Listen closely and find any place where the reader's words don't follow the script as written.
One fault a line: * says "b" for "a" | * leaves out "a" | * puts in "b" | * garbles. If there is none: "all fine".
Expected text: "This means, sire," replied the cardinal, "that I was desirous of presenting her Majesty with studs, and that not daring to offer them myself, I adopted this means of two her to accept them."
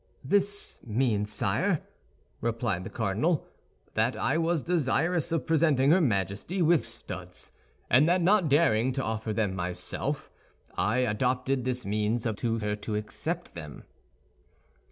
all fine